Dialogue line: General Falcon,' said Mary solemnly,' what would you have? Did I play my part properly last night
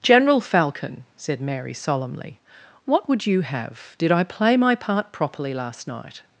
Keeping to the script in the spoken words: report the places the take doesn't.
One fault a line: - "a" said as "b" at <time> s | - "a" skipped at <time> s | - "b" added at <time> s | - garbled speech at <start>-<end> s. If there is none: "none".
none